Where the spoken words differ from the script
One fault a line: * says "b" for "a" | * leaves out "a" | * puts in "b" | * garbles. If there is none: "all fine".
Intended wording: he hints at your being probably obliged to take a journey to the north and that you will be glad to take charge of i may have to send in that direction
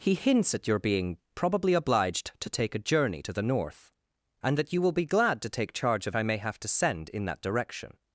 all fine